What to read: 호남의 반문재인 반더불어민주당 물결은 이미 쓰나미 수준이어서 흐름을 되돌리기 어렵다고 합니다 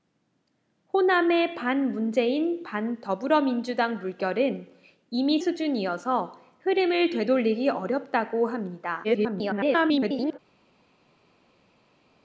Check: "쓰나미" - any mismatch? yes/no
yes